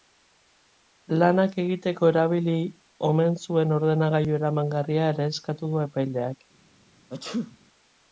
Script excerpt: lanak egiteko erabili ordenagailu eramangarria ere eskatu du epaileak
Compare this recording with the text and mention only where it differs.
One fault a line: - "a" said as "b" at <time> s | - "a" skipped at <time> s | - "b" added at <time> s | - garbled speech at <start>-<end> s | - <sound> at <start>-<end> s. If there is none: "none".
- "omen zuen" added at 3.1 s
- sneeze at 7.1-7.6 s